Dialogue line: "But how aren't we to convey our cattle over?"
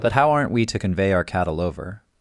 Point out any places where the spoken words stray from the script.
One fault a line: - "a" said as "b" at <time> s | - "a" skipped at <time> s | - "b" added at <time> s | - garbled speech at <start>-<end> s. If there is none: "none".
none